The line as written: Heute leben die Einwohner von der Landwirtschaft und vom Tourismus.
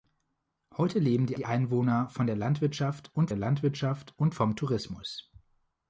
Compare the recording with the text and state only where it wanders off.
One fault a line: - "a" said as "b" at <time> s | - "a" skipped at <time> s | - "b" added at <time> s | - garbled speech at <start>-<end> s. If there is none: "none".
- "die" added at 1.4 s
- "der Landwirtschaft und" added at 3.3 s